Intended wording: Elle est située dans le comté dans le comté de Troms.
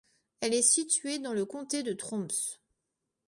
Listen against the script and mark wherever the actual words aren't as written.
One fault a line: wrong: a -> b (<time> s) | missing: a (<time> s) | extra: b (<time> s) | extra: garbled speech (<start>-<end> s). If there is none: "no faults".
missing: dans le comté (1.8 s)